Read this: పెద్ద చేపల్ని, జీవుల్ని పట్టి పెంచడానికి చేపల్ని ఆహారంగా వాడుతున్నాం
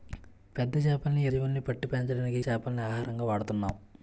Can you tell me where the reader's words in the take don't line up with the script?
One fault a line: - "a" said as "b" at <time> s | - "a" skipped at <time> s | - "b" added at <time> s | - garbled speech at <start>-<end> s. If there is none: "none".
none